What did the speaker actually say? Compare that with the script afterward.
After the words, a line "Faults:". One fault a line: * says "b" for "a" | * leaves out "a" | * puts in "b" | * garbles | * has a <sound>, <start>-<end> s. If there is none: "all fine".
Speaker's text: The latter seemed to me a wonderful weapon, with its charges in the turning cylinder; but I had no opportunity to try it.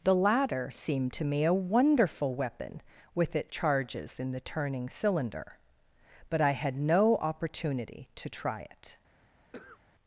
The latter seemed to me a wonderful weapon, with its charges in the turning cylinder; but I had no opportunity to try it.
Faults:
* has a cough, 9.5-9.8 s